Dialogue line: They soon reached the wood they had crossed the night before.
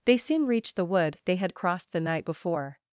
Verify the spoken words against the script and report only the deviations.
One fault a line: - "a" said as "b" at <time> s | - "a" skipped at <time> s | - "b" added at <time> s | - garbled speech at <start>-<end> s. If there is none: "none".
none